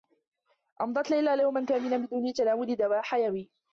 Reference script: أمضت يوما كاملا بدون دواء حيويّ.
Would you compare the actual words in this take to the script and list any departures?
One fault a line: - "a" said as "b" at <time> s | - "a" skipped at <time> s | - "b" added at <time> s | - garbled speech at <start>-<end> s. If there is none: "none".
- "ليلى" added at 1.1 s
- "تناول" added at 2.3 s